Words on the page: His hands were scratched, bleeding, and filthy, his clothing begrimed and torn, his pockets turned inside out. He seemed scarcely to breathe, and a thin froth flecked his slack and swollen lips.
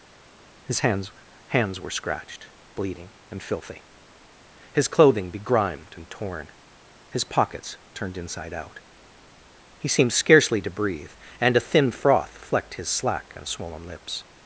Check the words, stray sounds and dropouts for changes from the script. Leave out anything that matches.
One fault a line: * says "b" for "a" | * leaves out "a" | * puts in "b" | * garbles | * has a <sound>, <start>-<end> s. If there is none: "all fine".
* puts in "hands"